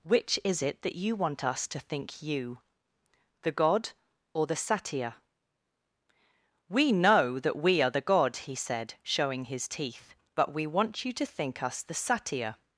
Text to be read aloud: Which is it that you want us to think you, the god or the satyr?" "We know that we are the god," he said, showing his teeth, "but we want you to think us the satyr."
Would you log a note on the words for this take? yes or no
no